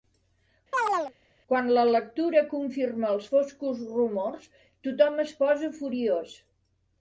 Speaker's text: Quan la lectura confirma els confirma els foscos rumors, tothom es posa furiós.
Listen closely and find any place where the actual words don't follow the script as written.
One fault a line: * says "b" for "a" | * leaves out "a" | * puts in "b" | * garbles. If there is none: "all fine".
* leaves out "confirma els"